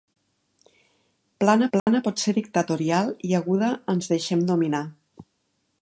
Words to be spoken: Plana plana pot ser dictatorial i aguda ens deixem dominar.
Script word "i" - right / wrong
right